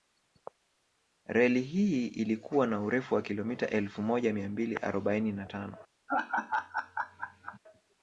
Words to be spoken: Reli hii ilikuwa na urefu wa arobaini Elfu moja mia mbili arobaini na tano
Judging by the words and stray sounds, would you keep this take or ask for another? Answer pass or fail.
fail